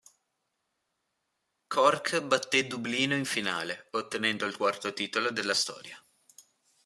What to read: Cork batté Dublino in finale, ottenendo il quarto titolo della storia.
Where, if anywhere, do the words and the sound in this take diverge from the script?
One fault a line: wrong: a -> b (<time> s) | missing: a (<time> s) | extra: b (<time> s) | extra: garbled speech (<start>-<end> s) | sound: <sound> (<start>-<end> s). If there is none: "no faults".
no faults